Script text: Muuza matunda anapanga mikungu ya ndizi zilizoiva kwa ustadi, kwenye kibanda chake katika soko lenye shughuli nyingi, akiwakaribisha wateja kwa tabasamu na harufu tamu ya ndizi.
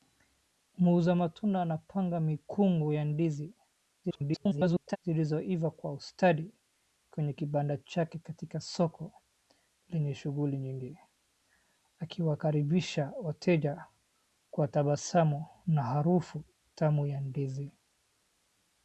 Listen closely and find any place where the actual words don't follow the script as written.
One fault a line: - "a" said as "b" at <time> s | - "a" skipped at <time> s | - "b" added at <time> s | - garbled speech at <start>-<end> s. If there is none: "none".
- garbled speech at 4.0-5.0 s